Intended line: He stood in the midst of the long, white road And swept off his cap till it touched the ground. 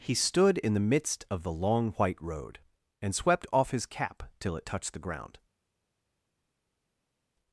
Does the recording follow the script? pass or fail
pass